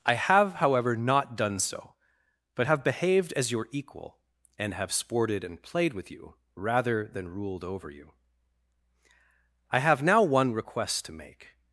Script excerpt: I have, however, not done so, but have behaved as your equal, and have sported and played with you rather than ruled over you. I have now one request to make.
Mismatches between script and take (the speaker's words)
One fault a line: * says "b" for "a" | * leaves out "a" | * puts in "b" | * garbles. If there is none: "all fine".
all fine